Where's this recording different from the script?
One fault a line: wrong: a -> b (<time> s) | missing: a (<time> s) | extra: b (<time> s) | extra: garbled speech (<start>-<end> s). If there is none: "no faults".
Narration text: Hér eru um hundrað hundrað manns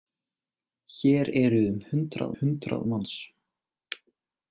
no faults